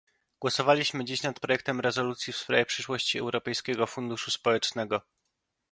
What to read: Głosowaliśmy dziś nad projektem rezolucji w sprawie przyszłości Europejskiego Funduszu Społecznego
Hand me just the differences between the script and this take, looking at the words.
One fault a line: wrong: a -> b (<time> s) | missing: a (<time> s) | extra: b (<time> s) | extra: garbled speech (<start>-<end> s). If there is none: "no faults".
no faults